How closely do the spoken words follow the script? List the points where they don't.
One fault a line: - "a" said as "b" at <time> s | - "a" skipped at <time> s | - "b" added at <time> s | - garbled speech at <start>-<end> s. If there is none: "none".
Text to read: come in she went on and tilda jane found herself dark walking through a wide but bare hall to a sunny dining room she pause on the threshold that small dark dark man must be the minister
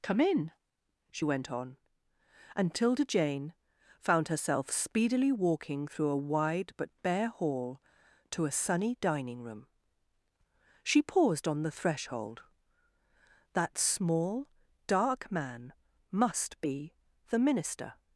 - "dark" said as "speedily" at 4.7 s
- "pause" said as "paused" at 11.0 s
- "dark" skipped at 15.3 s